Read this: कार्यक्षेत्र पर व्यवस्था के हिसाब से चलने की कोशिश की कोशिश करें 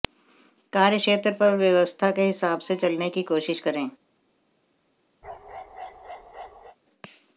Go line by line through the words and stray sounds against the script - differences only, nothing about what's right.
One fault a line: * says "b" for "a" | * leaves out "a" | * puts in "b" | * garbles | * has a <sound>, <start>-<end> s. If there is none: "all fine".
* leaves out "की कोशिश"
* has a bark, 5.2-6.8 s